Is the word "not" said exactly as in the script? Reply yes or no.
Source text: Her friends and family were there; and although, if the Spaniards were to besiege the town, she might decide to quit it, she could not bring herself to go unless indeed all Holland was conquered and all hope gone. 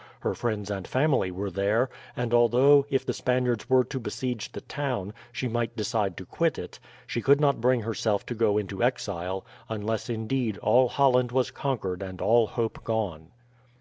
yes